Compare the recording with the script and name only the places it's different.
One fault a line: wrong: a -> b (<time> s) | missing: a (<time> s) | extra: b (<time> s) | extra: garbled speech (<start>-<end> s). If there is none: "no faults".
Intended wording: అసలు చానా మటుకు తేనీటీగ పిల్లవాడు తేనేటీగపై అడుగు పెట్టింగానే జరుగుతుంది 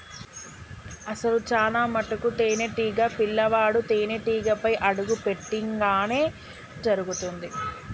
no faults